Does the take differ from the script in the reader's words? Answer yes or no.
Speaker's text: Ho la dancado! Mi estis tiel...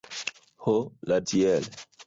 yes